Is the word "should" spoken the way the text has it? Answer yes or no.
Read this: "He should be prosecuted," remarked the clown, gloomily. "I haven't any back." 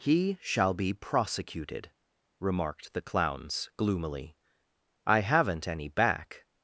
no